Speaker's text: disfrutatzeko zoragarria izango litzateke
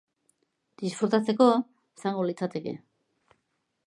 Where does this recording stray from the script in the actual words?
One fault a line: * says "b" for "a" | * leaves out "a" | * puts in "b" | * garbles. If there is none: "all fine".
* leaves out "zoragarria"